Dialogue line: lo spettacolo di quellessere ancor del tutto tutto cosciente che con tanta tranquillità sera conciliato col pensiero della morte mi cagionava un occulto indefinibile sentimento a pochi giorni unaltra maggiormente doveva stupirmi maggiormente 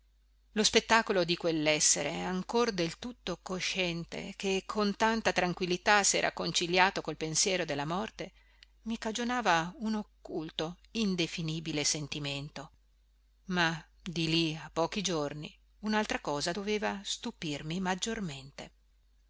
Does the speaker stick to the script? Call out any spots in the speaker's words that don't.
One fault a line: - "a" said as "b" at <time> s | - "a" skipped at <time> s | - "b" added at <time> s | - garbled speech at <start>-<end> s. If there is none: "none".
- "tutto" skipped at 3.4 s
- "ma di lì" added at 13.5 s
- "maggiormente" said as "cosa" at 16.2 s